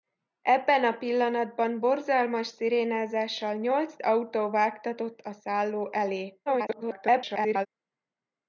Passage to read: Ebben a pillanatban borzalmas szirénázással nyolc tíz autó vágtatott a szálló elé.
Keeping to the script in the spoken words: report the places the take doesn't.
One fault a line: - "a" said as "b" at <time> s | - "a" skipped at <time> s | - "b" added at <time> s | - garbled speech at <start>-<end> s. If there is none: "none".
- "tíz" skipped at 4.0 s
- garbled speech at 6.5-7.7 s